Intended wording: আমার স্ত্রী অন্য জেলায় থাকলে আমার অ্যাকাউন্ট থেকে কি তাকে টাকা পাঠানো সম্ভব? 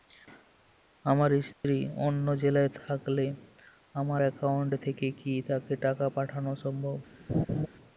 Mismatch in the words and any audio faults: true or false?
true